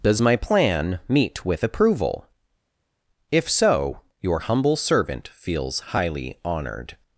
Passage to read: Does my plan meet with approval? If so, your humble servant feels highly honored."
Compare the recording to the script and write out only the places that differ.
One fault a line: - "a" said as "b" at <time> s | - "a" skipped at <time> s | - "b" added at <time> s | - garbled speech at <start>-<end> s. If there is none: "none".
none